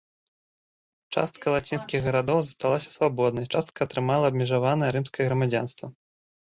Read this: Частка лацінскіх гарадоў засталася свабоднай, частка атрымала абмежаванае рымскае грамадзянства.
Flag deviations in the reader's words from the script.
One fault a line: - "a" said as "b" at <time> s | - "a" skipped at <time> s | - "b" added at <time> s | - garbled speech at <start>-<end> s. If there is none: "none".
none